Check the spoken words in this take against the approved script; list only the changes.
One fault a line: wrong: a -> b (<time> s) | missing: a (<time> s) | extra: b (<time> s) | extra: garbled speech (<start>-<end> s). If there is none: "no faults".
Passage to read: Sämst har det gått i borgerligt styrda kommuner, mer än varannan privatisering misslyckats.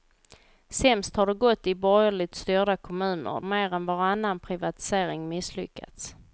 no faults